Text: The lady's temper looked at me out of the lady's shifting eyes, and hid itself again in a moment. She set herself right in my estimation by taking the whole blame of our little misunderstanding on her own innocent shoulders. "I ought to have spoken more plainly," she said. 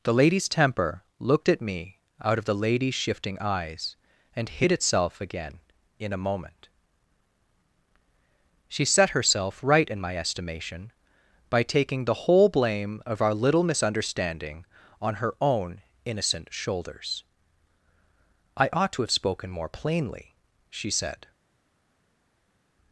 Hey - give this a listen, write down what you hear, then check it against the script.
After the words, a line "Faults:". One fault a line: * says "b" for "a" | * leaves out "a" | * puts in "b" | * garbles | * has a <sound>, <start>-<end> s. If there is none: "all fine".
The lady's temper looked at me out of the lady's shifting eyes, and hid itself again in a moment. She set herself right in my estimation by taking the whole blame of our little misunderstanding on her own innocent shoulders. "I ought to have spoken more plainly," she said.
Faults:
all fine